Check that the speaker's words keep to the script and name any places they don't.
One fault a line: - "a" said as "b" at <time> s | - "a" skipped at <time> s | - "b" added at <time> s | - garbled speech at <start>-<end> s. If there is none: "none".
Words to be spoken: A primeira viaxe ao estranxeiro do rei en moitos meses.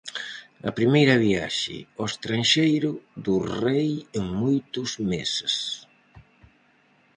none